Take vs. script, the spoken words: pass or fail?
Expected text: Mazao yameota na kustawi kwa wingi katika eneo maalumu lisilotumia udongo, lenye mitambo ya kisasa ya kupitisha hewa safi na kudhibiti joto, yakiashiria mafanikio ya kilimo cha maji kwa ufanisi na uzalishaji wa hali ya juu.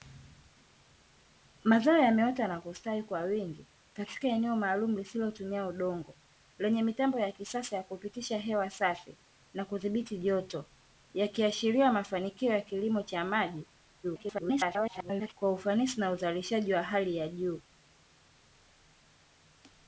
fail